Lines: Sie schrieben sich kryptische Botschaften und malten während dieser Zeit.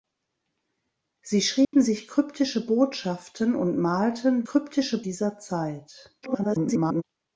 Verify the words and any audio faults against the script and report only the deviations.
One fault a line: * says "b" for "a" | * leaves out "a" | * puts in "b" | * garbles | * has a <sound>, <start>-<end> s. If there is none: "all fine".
* has a dropout, 1.6-1.7 s
* says "kryptische" for "während"
* garbles